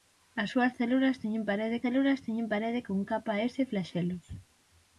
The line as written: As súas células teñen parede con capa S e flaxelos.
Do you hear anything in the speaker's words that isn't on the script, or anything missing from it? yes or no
yes